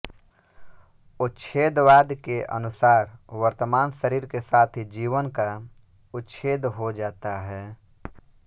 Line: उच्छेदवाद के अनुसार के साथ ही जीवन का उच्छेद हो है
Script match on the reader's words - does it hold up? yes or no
no